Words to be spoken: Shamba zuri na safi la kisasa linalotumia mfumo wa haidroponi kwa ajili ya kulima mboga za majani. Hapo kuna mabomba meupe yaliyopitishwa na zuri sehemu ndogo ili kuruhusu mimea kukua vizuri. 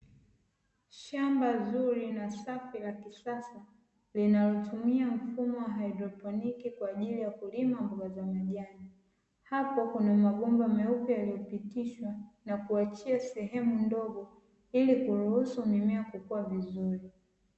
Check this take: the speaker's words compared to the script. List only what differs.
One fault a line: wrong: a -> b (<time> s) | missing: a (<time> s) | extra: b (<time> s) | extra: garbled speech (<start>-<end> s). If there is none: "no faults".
wrong: zuri -> kuachia (12.6 s)